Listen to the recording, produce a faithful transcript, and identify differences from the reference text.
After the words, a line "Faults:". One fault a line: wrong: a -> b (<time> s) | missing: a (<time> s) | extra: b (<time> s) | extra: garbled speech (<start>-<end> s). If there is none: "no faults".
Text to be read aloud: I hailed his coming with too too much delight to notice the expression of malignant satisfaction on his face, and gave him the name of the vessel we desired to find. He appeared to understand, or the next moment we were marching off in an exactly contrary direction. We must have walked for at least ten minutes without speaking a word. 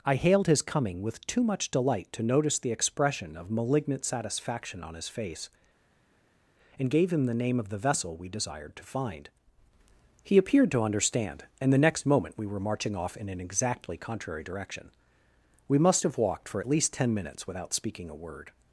I hailed his coming with too much delight to notice the expression of malignant satisfaction on his face, and gave him the name of the vessel we desired to find. He appeared to understand, and the next moment we were marching off in an exactly contrary direction. We must have walked for at least ten minutes without speaking a word.
Faults:
missing: too (1.4 s)
wrong: or -> and (11.6 s)